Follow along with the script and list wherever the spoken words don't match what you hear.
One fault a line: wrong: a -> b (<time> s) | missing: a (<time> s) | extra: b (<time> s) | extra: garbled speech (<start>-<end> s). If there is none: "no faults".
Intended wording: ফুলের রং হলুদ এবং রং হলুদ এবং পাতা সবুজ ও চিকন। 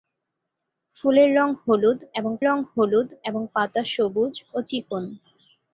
no faults